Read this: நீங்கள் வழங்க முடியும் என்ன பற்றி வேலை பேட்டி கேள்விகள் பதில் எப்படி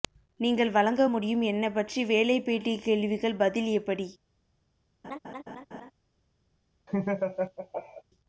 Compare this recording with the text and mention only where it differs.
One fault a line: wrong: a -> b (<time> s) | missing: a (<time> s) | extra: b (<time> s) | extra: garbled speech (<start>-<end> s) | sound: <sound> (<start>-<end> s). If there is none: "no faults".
sound: laugh (5.0-5.9 s)
sound: laugh (6.9-8.0 s)